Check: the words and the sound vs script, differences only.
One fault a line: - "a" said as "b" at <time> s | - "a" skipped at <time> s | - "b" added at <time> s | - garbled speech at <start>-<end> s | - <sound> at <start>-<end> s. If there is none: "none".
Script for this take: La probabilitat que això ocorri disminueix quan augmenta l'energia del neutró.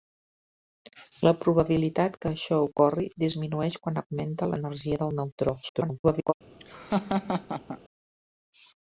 - garbled speech at 5.6-6.3 s
- laugh at 6.6-7.8 s